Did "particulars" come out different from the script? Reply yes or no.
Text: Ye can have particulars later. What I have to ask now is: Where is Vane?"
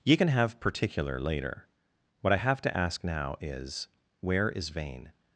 yes